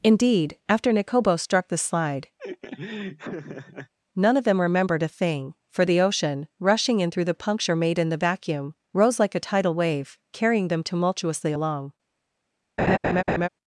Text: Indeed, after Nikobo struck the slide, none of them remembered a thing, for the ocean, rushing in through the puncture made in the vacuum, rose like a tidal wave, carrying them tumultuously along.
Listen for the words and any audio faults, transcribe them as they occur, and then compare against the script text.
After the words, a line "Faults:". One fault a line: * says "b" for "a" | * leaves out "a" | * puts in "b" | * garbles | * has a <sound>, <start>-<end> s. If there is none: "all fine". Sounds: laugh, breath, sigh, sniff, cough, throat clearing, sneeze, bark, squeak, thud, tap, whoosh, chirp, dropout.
Indeed, after Nikobo struck the slide, none of them remembered a thing, for the ocean, rushing in through the puncture made in the vacuum, rose like a tidal wave, carrying them tumultuously along.
Faults:
* has a laugh, 2.4-3.9 s
* has a laugh, 12.8-13.5 s